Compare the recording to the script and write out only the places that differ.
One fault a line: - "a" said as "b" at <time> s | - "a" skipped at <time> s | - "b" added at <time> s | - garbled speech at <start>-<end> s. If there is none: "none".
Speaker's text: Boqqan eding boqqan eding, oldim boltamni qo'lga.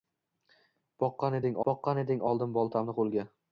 none